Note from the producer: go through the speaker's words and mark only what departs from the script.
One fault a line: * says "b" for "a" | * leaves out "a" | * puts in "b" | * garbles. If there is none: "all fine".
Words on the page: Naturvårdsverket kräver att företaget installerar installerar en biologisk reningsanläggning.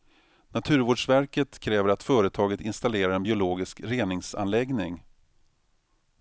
* leaves out "installerar"